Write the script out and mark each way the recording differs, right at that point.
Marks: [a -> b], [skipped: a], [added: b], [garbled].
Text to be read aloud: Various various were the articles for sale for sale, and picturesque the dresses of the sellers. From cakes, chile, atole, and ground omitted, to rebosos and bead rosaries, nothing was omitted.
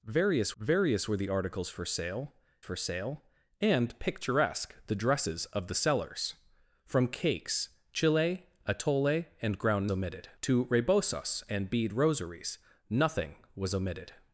Various various were the articles for sale for sale, and picturesque the dresses of the sellers. From cakes, chile, atole, and ground omitted, to rebosos and bead rosaries, nothing was omitted.